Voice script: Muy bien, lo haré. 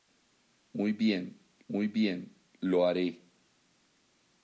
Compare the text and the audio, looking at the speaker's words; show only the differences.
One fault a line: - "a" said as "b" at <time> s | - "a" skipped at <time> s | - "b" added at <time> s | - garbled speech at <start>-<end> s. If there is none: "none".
- "muy bien" added at 1.7 s